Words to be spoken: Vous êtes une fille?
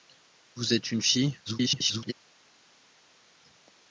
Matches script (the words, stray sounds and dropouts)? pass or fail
fail